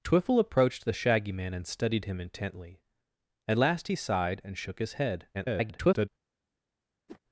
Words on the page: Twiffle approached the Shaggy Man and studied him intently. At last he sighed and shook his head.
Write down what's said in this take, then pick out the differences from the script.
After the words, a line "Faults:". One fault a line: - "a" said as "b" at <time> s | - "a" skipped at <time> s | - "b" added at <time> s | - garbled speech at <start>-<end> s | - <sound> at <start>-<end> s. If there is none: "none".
Twiffle approached the Shaggy Man and studied him intently. At last he sighed and shook his head. [garbled]
Faults:
- garbled speech at 5.3-6.1 s
- whoosh at 7.1-7.2 s